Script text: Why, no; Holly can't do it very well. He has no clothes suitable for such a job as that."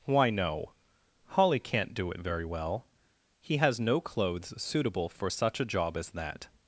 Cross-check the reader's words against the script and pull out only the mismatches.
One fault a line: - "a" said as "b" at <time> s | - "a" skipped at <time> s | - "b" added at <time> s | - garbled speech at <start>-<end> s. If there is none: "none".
none